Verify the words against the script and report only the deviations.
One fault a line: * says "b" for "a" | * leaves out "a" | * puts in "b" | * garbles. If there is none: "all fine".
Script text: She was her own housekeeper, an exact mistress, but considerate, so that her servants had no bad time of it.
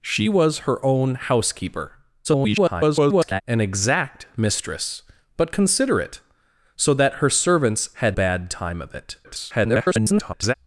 * garbles
* leaves out "no"
* garbles